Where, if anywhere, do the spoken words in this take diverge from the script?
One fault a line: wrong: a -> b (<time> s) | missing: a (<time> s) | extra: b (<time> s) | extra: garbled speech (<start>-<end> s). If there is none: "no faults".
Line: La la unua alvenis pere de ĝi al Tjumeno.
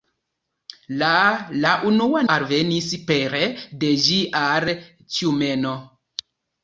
no faults